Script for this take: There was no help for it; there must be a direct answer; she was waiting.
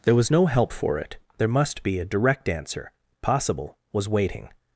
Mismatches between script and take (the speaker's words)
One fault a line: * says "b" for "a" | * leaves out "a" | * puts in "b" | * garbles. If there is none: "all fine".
* says "possible" for "she"